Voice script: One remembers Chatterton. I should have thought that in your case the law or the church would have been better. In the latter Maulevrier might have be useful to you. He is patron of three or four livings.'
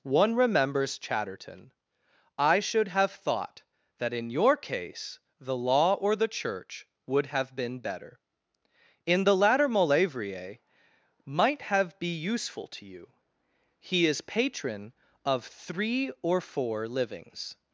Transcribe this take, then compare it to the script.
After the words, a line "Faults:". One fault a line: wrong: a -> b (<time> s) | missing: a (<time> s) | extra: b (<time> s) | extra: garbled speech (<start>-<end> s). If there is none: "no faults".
One remembers Chatterton. I should have thought that in your case the law or the church would have been better. In the latter Maulevrier might have be useful to you. He is patron of three or four livings.'
Faults:
no faults